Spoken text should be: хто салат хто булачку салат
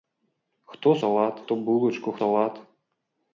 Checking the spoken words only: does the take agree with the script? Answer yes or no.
yes